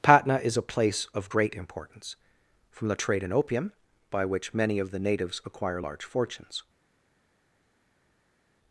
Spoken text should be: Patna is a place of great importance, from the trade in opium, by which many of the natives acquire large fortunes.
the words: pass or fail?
pass